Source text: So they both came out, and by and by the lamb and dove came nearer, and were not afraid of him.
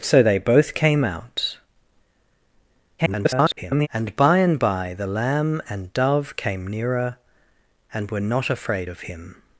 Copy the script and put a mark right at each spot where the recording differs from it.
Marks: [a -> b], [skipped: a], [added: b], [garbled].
So they both came out, [garbled] and by and by the lamb and dove came nearer, and were not afraid of him.